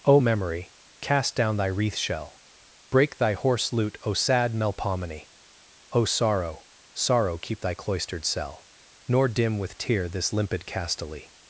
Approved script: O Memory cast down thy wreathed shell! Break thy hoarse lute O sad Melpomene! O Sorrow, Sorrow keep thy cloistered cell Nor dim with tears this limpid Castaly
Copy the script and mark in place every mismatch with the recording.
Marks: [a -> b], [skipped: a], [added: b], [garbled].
O Memory cast down thy [wreathed -> wreath] shell! Break thy hoarse lute O sad Melpomene! O Sorrow, Sorrow keep thy cloistered cell Nor dim with [tears -> tear] this limpid Castaly